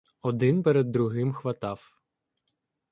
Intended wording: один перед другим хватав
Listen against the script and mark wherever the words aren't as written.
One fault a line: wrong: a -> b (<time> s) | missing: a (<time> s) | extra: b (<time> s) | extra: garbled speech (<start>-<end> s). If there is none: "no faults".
no faults